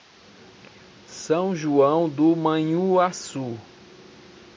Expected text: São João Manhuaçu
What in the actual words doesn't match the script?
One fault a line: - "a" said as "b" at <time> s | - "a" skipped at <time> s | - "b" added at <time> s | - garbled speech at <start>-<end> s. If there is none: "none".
- "do" added at 2.1 s